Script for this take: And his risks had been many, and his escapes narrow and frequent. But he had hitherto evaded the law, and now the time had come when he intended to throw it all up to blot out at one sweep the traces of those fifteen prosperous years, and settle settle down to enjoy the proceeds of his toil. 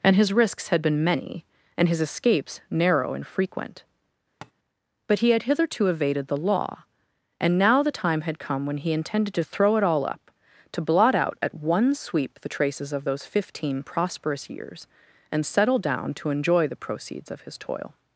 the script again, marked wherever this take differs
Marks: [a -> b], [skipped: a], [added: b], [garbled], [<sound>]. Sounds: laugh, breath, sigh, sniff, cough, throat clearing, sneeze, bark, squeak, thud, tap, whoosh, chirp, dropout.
And his risks had been many, and his escapes narrow and frequent. [tap] But he had hitherto evaded the law, and now the time had come when he intended to throw it all up to blot out at one sweep the traces of those fifteen prosperous years, and settle [skipped: settle] down to enjoy the proceeds of his toil.